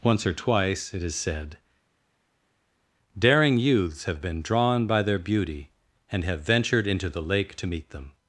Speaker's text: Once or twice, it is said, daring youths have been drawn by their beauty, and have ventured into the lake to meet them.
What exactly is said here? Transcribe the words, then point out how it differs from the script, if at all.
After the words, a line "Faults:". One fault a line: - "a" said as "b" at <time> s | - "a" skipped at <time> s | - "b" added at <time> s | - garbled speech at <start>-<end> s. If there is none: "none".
Once or twice, it is said, daring youths have been drawn by their beauty, and have ventured into the lake to meet them.
Faults:
none